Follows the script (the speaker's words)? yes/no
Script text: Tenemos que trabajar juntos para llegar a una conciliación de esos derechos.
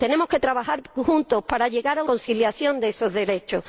no